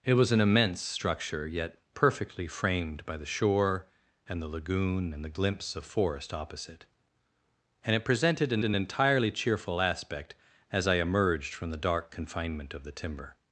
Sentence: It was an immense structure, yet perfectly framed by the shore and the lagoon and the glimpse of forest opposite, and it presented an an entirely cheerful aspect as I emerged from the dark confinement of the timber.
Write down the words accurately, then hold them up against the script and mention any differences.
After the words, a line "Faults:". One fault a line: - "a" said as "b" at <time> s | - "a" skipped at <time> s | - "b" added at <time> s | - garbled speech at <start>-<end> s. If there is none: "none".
It was an immense structure, yet perfectly framed by the shore and the lagoon and the glimpse of forest opposite, and it presented an an entirely cheerful aspect as I emerged from the dark confinement of the timber.
Faults:
none